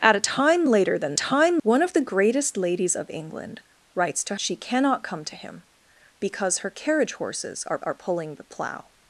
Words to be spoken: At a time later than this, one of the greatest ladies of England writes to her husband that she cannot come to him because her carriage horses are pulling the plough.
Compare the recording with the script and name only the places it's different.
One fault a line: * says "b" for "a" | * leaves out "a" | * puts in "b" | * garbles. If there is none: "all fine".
* says "time" for "this"
* leaves out "her husband that"
* puts in "are"